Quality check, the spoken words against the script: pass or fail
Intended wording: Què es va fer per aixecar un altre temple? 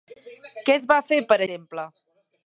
fail